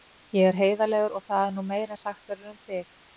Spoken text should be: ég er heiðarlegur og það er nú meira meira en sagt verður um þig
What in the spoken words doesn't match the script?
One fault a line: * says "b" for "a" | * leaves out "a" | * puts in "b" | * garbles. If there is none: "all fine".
* leaves out "meira"